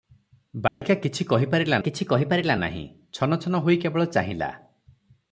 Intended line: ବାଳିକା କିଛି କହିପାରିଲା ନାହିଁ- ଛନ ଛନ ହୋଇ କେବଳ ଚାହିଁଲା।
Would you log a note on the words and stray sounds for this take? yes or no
yes